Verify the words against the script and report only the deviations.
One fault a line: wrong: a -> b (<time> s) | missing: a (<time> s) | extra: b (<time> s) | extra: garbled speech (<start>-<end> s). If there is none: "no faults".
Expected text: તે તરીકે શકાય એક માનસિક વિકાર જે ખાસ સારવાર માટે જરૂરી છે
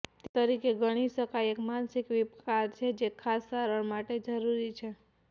extra: ગણી (0.8 s)
extra: છે (2.8 s)